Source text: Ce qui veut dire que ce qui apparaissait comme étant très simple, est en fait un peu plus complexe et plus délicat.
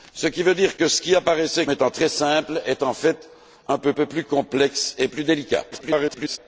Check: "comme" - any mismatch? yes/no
yes